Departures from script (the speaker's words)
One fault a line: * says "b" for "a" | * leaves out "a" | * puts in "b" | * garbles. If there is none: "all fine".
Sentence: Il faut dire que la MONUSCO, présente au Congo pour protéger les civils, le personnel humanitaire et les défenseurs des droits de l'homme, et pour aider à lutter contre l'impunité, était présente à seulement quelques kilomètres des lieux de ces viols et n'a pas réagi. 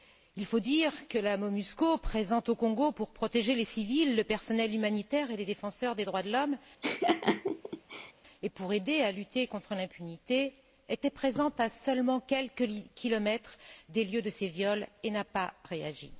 all fine